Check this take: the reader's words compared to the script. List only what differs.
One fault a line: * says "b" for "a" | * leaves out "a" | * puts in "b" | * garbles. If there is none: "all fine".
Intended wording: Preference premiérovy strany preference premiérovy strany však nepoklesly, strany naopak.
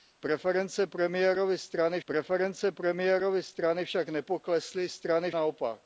all fine